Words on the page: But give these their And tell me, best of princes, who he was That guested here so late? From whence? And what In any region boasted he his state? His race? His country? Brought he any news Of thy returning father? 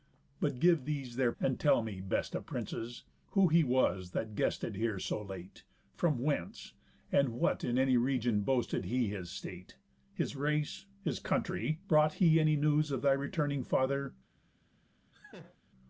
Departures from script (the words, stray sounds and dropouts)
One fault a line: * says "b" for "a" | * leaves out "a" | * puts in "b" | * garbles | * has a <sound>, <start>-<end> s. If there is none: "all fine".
* has a laugh, 15.1-15.6 s